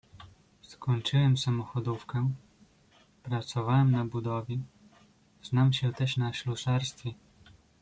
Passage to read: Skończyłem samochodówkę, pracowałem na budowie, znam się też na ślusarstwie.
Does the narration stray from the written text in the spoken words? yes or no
no